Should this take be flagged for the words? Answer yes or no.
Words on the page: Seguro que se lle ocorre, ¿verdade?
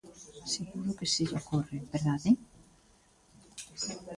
no